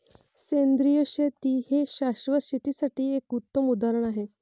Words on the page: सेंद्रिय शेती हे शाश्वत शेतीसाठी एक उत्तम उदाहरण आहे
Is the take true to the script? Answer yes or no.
yes